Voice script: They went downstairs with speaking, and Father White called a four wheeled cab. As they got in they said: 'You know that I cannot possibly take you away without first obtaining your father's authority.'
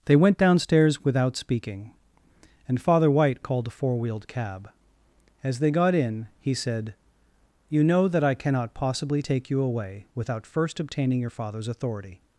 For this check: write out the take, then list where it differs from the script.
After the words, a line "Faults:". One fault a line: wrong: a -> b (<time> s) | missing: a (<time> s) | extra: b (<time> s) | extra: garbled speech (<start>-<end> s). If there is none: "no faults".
They went downstairs without speaking, and Father White called a four wheeled cab. As they got in he said: 'You know that I cannot possibly take you away without first obtaining your father's authority.'
Faults:
wrong: with -> without (1.0 s)
wrong: they -> he (6.4 s)